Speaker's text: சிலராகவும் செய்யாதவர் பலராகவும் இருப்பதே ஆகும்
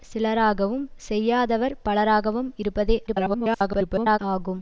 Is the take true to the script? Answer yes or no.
no